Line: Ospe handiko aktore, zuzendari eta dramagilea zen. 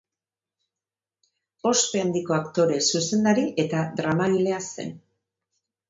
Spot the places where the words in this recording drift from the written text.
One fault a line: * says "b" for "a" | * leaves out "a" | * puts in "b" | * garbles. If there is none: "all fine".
all fine